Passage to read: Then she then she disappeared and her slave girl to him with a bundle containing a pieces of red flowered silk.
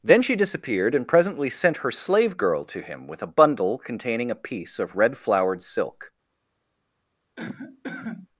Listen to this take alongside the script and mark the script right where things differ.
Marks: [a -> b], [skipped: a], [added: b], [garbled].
Then she [then she disappeared and -> disappeared and presently sent] her slave girl to him with a bundle containing a [pieces -> piece] of red flowered silk.